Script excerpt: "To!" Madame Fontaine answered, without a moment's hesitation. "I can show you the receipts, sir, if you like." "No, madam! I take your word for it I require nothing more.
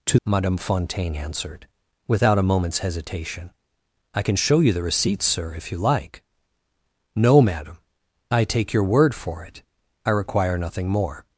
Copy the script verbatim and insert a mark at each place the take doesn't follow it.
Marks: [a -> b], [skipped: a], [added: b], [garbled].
"To!" Madame Fontaine answered, without a moment's hesitation. "I can show you the receipts, sir, if you like." "No, madam! I take your word for it I require nothing more.